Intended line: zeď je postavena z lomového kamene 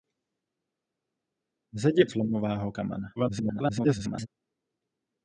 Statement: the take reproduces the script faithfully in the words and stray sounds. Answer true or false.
false